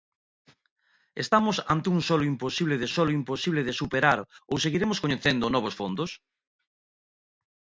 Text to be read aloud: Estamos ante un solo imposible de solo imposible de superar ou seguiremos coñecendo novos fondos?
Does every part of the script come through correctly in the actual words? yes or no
yes